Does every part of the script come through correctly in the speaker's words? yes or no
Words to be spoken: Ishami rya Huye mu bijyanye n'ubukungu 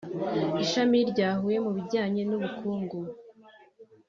yes